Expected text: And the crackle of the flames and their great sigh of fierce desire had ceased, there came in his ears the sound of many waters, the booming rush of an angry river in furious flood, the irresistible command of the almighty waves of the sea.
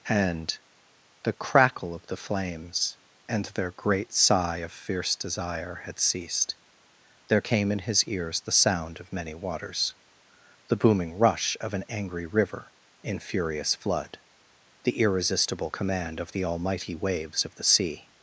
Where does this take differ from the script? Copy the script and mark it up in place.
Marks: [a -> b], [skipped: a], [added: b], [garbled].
And the crackle of the flames and their great sigh of fierce desire had ceased, there came in his ears the sound of many waters, the booming rush of an angry river in furious flood, the irresistible command of the almighty waves of the sea.